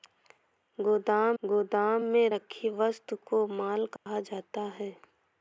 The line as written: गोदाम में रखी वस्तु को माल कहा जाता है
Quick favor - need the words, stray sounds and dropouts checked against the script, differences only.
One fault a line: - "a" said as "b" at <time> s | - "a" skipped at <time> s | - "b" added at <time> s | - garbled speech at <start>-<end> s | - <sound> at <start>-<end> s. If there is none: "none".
- "गोदाम" added at 1.4 s
- dropout at 4.0-4.1 s